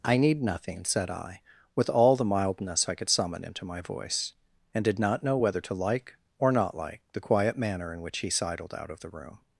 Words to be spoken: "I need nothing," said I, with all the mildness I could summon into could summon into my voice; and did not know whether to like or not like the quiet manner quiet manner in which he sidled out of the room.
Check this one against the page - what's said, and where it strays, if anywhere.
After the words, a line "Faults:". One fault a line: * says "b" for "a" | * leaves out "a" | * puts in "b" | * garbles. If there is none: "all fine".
"I need nothing," said I, with all the mildness I could summon into my voice; and did not know whether to like or not like the quiet manner in which he sidled out of the room.
Faults:
* leaves out "could summon into"
* leaves out "quiet manner"